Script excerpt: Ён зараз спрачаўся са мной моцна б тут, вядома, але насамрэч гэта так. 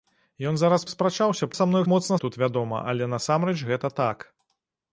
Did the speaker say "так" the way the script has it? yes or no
yes